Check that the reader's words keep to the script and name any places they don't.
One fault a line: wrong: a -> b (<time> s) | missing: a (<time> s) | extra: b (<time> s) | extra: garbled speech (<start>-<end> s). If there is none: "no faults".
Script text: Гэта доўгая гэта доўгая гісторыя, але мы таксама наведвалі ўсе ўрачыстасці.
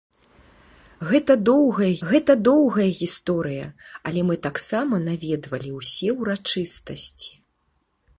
no faults